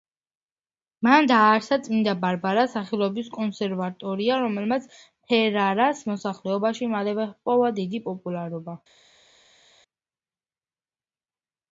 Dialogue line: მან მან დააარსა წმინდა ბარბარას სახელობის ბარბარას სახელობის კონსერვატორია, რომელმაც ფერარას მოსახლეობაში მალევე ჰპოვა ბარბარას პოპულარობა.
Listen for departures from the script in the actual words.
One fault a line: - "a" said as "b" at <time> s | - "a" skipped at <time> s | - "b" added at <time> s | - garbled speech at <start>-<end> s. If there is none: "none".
- "მან" skipped at 1.3 s
- "ბარბარას სახელობის" skipped at 3.3 s
- "ბარბარას" said as "დიდი" at 7.8 s